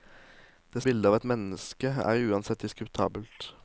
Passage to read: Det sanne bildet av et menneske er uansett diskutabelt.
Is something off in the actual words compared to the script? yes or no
yes